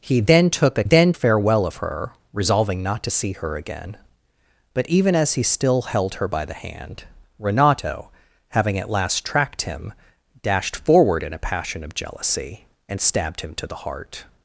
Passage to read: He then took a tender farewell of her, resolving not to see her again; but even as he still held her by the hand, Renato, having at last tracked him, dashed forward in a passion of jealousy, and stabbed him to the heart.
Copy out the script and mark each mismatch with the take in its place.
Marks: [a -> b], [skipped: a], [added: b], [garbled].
He then took a [tender -> then] farewell of her, resolving not to see her again; but even as he still held her by the hand, Renato, having at last tracked him, dashed forward in a passion of jealousy, and stabbed him to the heart.